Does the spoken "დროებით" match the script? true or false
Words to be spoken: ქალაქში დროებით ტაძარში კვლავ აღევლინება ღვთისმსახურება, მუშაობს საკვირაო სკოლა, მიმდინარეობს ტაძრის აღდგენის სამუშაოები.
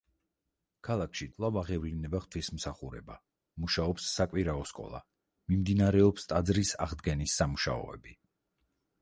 false